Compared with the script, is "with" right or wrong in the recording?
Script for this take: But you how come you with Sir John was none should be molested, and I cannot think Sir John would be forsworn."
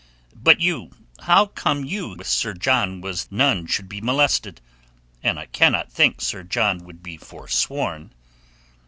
right